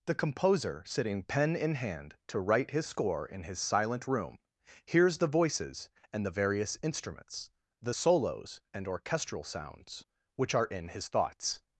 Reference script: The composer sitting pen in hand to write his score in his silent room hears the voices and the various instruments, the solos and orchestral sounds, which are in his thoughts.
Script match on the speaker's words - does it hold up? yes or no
yes